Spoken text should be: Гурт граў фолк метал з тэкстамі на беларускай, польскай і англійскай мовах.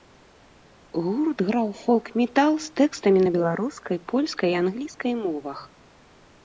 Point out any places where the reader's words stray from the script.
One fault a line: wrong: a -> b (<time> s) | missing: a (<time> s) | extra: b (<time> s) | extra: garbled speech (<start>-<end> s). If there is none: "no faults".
no faults